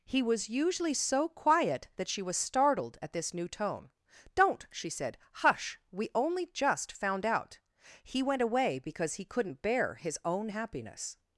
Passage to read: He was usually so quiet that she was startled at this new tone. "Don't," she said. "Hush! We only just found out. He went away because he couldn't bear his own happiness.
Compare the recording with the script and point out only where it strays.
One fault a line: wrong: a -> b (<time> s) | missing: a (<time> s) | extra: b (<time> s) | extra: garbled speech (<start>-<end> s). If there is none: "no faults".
no faults